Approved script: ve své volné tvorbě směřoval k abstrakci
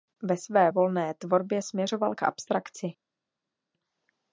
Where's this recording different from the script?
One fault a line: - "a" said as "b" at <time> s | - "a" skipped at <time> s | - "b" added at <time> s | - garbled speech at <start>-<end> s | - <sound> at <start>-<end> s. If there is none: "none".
none